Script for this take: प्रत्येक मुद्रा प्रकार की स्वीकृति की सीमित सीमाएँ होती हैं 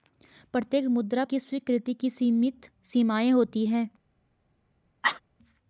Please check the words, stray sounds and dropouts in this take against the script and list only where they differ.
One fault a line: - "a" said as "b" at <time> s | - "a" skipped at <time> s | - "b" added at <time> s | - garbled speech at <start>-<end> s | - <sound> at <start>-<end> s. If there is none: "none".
- "प्रकार" skipped at 1.2 s
- cough at 5.0-5.2 s